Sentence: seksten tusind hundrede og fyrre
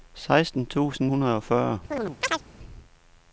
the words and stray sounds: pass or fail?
fail